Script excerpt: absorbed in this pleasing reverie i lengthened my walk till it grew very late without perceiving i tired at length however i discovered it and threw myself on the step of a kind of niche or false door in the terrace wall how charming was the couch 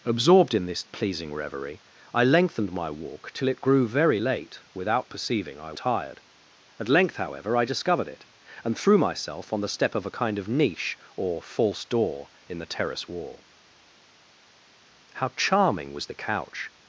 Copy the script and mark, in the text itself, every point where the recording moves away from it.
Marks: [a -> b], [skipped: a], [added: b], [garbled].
absorbed in this pleasing reverie i lengthened my walk till it grew very late without perceiving i tired at length however i discovered it and threw myself on the step of a kind of niche or false door in the terrace wall how charming was the couch